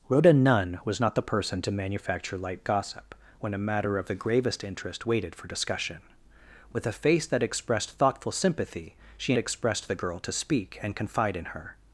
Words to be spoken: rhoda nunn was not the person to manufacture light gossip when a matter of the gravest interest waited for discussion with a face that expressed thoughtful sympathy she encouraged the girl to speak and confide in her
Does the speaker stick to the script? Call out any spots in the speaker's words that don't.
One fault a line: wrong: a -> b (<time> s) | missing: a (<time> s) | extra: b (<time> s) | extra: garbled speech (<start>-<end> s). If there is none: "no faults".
wrong: encouraged -> expressed (9.4 s)